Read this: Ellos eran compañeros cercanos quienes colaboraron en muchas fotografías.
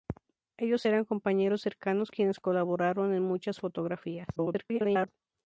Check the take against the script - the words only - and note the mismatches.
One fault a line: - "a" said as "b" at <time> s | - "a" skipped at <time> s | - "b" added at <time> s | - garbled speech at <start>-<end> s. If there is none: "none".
- garbled speech at 4.4-5.1 s